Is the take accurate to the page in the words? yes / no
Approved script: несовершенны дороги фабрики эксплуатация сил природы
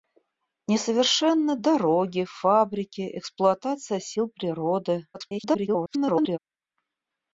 no